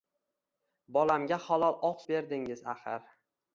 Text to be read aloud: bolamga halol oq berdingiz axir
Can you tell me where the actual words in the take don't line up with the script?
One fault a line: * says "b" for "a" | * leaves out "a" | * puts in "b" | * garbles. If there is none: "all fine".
all fine